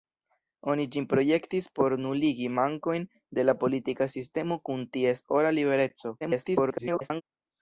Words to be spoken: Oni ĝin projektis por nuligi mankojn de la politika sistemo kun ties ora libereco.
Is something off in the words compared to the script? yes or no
yes